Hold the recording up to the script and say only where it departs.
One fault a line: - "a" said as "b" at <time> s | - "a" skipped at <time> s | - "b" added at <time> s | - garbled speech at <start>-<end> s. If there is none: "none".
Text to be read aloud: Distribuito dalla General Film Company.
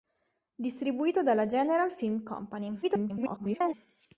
- garbled speech at 2.8-3.7 s